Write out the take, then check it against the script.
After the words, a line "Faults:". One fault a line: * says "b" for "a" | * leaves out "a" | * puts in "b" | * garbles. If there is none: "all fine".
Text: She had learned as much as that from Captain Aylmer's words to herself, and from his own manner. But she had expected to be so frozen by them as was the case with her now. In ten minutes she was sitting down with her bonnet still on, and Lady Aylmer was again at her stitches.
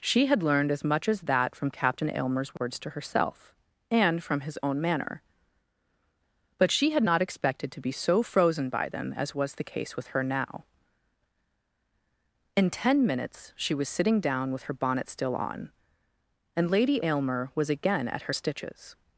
She had learned as much as that from Captain Aylmer's words to herself, and from his own manner. But she had not expected to be so frozen by them as was the case with her now. In ten minutes she was sitting down with her bonnet still on, and Lady Aylmer was again at her stitches.
Faults:
* puts in "not"